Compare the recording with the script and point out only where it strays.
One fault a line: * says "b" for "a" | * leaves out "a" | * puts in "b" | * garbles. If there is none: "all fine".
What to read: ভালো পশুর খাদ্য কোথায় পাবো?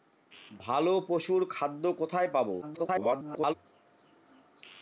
* garbles